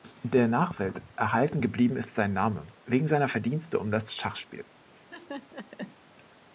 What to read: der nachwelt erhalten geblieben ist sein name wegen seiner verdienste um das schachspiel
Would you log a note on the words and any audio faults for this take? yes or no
yes